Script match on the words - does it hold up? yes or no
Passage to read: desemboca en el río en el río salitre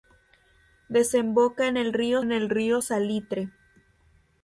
yes